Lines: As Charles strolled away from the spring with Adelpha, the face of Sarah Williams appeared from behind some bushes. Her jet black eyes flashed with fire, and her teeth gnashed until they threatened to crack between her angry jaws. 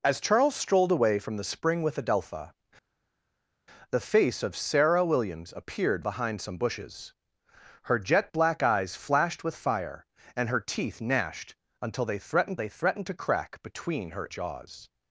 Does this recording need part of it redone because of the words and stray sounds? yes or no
yes